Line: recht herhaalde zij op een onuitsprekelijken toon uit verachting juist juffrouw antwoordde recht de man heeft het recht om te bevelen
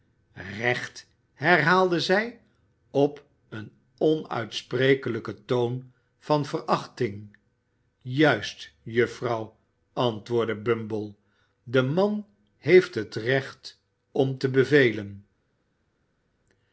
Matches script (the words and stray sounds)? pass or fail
fail